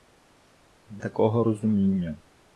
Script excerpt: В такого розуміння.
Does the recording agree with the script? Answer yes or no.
yes